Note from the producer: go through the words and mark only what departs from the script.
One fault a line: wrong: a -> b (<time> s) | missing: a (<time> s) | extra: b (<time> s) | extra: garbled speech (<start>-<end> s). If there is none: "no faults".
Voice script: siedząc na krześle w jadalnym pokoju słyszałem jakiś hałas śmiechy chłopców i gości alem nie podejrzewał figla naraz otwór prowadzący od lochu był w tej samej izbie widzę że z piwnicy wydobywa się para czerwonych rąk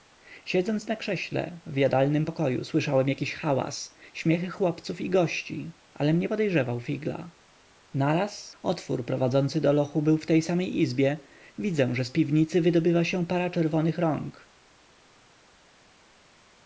wrong: od -> do (9.6 s)